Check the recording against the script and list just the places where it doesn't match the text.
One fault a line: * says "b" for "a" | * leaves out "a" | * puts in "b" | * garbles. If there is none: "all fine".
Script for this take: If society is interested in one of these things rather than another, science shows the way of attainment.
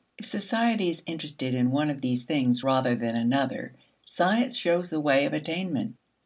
all fine